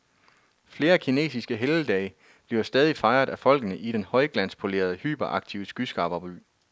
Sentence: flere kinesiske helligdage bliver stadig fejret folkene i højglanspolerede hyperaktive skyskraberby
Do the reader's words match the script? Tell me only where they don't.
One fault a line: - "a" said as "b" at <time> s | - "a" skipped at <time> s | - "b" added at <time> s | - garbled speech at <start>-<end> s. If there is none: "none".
- "af" added at 3.3 s
- "den" added at 3.9 s